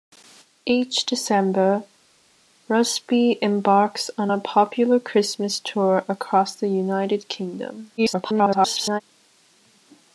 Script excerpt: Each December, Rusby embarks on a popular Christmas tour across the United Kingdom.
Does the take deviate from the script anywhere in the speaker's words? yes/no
yes